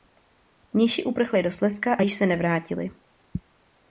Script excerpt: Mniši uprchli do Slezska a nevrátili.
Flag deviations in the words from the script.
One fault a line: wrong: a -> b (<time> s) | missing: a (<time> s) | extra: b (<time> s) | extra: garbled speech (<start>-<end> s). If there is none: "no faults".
extra: již se (2.0 s)